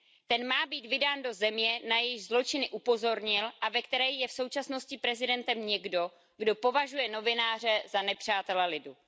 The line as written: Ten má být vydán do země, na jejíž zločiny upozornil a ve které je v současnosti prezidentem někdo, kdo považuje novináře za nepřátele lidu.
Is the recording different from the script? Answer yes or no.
no